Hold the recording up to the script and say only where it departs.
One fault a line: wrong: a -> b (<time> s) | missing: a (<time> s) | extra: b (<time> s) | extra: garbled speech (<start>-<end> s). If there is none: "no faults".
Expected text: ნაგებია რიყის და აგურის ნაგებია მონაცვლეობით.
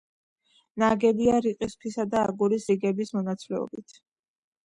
extra: ქვისა (1.8 s)
wrong: ნაგებია -> რიგების (2.7 s)